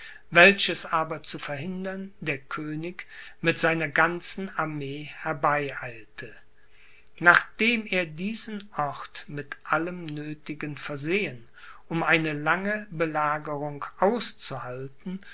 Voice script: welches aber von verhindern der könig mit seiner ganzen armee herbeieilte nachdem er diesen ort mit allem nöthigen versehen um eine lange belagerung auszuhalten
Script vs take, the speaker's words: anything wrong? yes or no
yes